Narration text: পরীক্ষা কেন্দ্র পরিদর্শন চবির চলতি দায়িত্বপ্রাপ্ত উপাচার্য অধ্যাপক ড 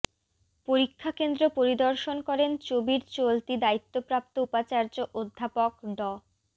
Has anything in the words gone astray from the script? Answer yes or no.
yes